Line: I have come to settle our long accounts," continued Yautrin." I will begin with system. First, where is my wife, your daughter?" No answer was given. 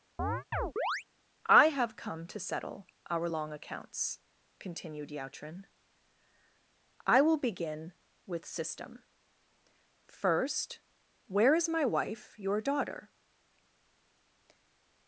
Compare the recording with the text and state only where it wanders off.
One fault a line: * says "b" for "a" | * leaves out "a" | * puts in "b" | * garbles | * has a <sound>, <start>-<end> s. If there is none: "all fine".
* has a chirp, 0.2-1.0 s
* leaves out "No answer was given"